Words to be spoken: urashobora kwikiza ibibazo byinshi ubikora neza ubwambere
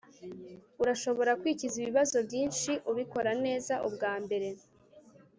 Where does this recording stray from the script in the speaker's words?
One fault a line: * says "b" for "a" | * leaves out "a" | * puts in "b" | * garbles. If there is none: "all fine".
all fine